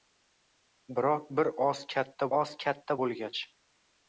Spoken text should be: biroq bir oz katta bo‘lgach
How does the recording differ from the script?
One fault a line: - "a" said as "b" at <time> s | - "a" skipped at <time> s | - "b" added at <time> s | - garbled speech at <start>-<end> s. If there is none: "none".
- "oz katta" added at 2.4 s